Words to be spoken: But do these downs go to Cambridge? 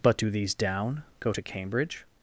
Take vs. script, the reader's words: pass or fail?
fail